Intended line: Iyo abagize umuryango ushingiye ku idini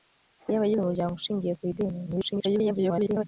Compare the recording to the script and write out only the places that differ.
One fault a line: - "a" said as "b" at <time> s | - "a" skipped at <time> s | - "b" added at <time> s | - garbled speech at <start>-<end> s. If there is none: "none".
- garbled speech at 2.1-3.2 s